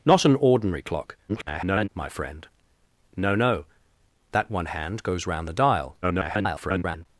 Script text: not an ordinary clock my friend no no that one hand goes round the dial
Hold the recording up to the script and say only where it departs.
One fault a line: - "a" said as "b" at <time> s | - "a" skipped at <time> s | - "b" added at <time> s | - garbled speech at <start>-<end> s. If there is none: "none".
- garbled speech at 1.3-1.9 s
- garbled speech at 6.0-7.1 s